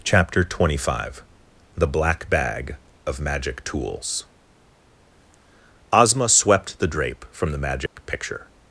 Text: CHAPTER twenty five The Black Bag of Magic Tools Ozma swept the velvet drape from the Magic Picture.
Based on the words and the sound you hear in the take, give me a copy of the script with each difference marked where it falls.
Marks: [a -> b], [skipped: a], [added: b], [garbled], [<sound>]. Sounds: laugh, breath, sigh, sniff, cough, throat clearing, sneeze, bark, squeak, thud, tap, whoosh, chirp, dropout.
CHAPTER twenty five The Black Bag of Magic Tools Ozma swept the [skipped: velvet] drape from the Magic [dropout] Picture.